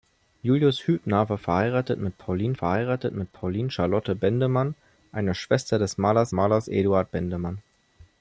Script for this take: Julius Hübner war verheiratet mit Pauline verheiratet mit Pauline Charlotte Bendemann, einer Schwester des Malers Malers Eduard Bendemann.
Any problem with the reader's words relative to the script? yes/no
no